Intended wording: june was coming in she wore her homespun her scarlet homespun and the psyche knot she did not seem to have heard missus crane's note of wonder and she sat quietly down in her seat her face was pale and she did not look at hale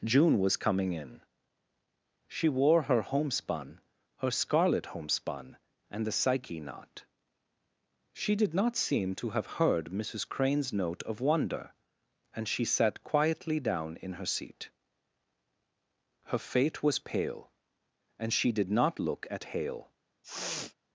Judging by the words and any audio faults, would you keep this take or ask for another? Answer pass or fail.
fail